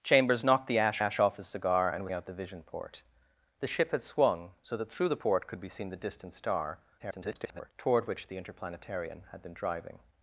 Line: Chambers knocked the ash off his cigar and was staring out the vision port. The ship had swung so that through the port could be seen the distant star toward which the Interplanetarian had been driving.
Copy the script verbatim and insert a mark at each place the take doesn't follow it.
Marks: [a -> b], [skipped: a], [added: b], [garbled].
Chambers knocked the ash [added: ash] off his cigar and was [skipped: staring] out the vision port. The ship had swung so that through the port could be seen the distant star [garbled] toward which the Interplanetarian had been driving.